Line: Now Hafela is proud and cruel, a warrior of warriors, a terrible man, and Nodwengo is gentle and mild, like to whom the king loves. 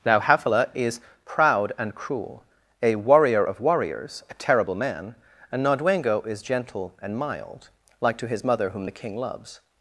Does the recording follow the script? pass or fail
fail